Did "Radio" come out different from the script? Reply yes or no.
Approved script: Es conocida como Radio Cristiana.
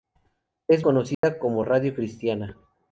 no